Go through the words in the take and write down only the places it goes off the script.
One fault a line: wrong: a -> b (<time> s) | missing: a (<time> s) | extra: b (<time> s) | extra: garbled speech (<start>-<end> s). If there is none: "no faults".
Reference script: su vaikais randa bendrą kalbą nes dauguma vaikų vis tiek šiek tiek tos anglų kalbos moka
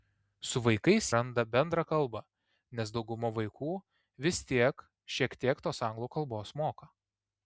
no faults